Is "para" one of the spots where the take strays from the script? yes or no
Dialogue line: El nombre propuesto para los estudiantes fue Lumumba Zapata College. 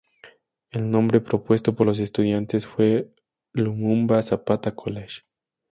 yes